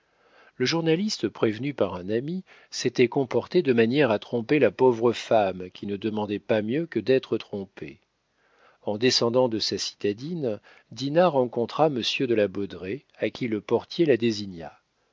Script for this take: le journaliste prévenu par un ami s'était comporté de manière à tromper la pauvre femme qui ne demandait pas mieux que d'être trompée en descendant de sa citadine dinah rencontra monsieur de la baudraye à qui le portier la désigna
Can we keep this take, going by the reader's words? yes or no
yes